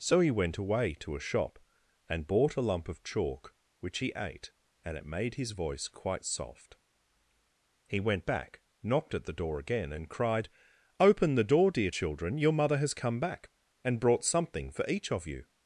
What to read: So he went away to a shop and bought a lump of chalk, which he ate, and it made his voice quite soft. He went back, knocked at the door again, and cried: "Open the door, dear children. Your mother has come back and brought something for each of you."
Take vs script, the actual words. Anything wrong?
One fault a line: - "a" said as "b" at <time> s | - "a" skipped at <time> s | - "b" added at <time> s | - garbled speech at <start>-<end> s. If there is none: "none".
none